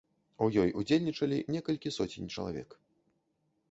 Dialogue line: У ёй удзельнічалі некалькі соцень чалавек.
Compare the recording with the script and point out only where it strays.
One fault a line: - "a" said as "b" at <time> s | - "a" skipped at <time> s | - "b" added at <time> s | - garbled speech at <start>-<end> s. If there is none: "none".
none